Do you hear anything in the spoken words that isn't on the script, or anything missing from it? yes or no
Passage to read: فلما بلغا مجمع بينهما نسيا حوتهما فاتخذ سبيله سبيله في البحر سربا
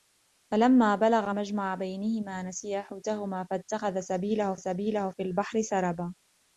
no